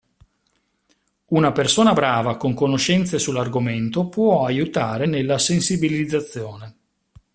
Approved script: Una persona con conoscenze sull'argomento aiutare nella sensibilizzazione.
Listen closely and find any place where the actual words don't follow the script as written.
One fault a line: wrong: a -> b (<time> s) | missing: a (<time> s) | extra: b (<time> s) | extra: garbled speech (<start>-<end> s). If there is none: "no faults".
extra: brava (1.9 s)
extra: può (4.1 s)